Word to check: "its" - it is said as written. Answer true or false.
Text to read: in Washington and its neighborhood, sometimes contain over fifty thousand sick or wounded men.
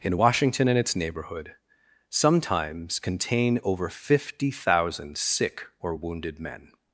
true